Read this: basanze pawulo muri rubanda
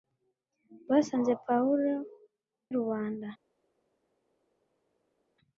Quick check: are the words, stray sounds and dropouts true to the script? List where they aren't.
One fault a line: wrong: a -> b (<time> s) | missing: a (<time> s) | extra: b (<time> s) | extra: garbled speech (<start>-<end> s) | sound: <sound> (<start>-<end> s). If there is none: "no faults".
missing: muri (1.9 s)